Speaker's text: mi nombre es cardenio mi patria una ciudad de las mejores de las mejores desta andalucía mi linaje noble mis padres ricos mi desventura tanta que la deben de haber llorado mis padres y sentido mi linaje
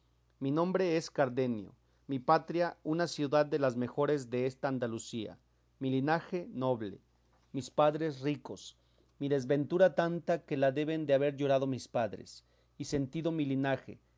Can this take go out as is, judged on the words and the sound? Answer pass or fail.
fail